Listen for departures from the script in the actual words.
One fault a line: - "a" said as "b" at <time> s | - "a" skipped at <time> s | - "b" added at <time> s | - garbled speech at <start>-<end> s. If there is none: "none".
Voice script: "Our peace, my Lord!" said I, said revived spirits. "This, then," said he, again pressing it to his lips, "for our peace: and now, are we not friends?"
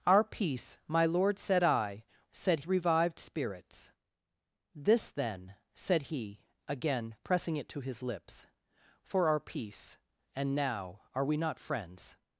none